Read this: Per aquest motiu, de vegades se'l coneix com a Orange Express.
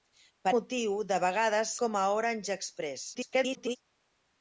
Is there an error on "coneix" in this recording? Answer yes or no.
yes